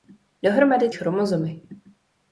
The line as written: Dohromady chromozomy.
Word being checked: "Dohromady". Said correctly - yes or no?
yes